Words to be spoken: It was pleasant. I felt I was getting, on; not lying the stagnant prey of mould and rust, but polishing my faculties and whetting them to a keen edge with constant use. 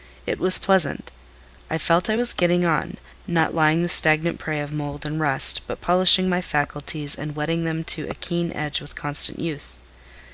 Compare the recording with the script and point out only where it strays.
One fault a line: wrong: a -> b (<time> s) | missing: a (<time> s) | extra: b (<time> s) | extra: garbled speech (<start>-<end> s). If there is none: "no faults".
no faults